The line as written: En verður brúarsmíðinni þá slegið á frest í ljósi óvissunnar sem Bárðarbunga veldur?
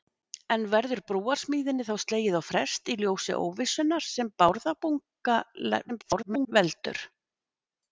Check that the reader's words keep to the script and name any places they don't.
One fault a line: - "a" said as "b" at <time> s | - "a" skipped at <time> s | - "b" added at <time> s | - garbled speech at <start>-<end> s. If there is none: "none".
- garbled speech at 5.9-6.5 s